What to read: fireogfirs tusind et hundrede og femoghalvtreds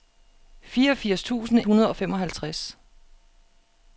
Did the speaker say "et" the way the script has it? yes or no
no